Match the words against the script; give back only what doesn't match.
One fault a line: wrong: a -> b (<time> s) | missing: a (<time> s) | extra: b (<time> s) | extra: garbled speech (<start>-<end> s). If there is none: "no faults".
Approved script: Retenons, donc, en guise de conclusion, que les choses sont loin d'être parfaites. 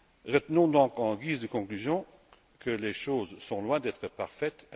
no faults